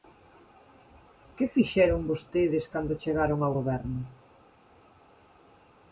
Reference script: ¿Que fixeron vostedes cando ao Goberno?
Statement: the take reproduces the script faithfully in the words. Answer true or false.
false